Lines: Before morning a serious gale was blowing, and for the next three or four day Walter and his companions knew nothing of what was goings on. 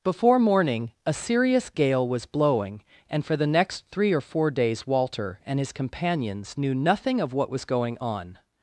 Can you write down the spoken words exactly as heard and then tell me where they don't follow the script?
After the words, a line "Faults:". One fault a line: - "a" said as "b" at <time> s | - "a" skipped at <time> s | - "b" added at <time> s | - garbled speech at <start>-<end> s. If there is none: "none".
Before morning a serious gale was blowing, and for the next three or four days Walter and his companions knew nothing of what was going on.
Faults:
- "day" said as "days" at 4.5 s
- "goings" said as "going" at 7.7 s